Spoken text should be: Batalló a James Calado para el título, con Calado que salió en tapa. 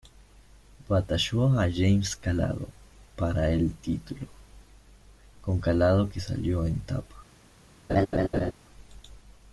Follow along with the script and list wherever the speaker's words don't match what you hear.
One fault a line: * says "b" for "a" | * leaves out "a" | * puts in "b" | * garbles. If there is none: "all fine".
all fine